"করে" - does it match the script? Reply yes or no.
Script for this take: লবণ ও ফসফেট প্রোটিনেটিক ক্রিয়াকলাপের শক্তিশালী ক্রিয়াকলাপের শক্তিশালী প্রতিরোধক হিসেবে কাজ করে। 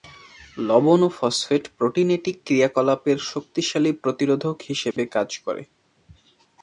yes